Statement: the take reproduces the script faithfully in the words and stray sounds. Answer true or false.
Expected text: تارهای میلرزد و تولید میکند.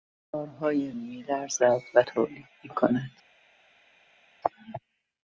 true